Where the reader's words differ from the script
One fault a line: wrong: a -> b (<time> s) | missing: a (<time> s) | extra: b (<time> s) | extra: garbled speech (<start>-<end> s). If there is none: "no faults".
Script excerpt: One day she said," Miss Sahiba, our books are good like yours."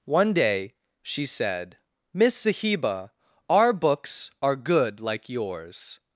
no faults